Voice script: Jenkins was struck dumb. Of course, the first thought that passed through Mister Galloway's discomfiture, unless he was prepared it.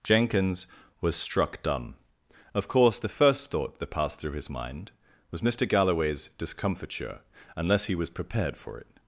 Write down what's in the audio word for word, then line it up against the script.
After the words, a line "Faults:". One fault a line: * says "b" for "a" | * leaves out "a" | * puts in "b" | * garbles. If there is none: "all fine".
Jenkins was struck dumb. Of course, the first thought that passed through his mind was Mister Galloway's discomfiture, unless he was prepared for it.
Faults:
* puts in "his mind was"
* puts in "for"